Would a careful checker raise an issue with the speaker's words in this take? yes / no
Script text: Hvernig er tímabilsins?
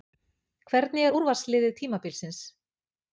yes